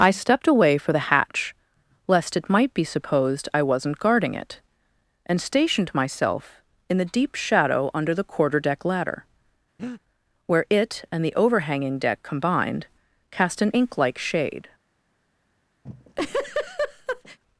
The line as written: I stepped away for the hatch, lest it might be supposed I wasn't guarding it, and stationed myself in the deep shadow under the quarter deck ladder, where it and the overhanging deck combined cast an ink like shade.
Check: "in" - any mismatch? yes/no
no